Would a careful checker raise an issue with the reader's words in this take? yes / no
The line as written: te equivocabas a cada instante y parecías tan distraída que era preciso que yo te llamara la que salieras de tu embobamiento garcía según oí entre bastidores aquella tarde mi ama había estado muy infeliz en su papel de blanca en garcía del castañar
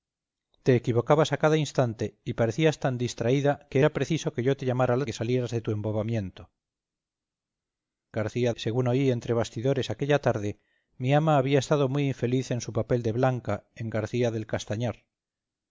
no